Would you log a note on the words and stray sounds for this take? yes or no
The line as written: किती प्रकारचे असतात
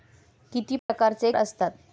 yes